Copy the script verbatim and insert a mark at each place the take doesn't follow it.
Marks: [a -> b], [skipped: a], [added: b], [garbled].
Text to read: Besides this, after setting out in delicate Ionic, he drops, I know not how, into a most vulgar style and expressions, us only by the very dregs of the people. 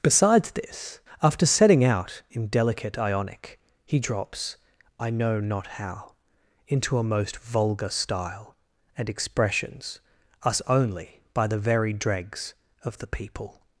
Besides this, after setting out in delicate Ionic, he drops, I know not how, into a most vulgar style and expressions, us only by the very dregs of the people.